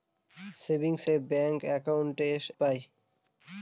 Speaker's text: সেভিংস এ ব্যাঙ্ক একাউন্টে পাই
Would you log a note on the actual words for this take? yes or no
no